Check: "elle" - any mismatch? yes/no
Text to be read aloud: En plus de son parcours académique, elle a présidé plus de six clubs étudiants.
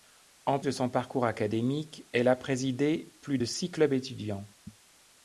no